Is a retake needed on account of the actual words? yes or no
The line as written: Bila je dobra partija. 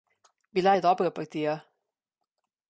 no